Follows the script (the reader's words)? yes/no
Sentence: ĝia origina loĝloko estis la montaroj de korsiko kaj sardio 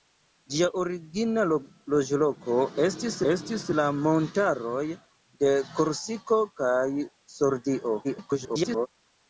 no